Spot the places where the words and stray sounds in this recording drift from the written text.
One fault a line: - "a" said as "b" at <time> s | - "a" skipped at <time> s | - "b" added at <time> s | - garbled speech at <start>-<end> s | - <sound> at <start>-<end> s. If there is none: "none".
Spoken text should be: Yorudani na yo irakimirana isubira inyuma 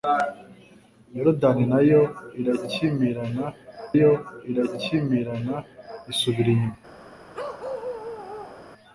- "yo irakimirana" added at 4.0 s
- bark at 7.3-8.7 s